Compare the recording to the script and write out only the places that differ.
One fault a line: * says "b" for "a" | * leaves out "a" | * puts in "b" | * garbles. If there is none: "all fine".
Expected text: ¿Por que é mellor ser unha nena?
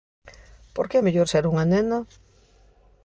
all fine